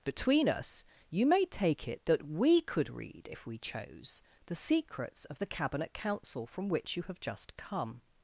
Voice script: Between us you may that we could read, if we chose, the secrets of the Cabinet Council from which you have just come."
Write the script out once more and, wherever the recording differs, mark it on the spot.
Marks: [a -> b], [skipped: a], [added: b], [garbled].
Between us you may [added: take it] that we could read, if we chose, the secrets of the Cabinet Council from which you have just come."